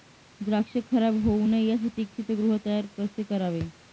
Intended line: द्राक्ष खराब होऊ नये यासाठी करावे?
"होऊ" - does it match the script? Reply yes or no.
yes